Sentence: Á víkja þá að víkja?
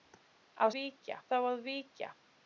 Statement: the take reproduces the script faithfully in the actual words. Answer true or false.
true